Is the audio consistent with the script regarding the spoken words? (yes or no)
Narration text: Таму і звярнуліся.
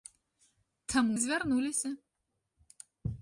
yes